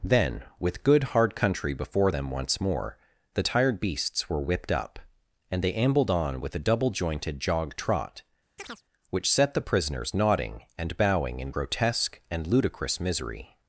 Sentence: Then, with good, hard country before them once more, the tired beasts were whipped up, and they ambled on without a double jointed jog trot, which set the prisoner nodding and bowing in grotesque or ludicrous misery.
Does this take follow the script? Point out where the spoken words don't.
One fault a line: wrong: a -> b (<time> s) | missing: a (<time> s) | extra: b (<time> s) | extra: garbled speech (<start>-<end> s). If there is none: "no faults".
wrong: without -> with (6.4 s)
wrong: prisoner -> prisoners (9.6 s)
wrong: or -> and (12.3 s)